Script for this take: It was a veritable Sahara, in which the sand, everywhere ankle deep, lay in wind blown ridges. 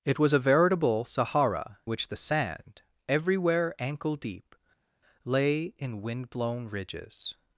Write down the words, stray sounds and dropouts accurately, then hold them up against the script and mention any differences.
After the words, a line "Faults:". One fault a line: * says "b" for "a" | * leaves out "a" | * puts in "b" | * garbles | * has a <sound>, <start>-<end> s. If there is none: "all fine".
It was a veritable Sahara, which the sand, everywhere ankle deep, lay in wind blown ridges.
Faults:
* leaves out "in"